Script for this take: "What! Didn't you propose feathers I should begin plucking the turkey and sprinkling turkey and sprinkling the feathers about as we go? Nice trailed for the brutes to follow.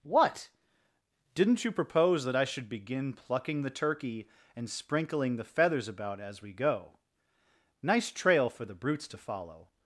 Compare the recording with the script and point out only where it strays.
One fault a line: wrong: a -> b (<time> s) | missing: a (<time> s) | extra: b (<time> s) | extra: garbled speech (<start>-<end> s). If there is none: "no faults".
wrong: feathers -> that (2.2 s)
missing: turkey and sprinkling (5.3 s)
wrong: trailed -> trail (8.1 s)